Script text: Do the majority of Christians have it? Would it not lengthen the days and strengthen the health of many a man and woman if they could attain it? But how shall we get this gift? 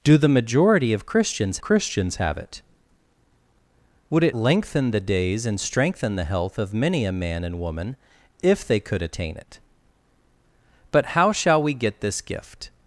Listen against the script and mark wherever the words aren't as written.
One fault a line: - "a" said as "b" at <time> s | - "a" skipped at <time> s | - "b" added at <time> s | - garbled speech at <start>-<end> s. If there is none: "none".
- "Christians" added at 1.6 s
- "not" skipped at 4.4 s